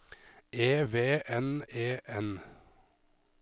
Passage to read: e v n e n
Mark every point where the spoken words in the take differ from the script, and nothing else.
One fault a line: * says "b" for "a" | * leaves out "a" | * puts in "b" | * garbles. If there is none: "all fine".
all fine